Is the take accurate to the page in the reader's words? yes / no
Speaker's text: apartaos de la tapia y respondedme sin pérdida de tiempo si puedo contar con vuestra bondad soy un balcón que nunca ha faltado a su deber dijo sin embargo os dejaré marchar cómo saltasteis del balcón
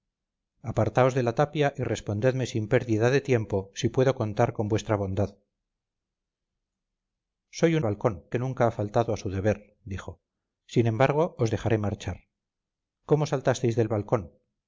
yes